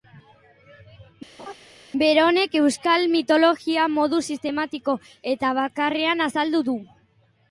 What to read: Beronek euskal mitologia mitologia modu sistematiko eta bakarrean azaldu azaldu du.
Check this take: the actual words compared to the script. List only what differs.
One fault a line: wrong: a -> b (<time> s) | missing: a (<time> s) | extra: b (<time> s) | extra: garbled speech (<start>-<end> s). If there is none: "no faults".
missing: mitologia (3.9 s)
missing: azaldu (6.6 s)